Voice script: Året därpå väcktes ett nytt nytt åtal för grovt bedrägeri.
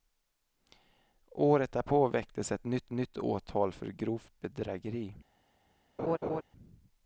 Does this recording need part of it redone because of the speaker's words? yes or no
no